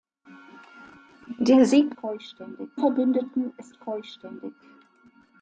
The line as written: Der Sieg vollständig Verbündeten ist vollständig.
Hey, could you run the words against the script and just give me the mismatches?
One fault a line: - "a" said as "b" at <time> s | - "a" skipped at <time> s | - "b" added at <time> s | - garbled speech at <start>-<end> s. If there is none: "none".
none